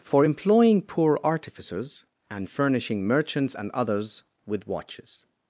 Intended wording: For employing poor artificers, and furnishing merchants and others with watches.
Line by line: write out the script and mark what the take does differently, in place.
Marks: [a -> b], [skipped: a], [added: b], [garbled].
For employing poor artificers, and furnishing merchants and others with watches.